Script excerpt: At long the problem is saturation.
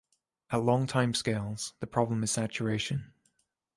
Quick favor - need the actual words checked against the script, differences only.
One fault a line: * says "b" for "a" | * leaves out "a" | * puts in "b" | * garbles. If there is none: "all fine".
* puts in "timescales"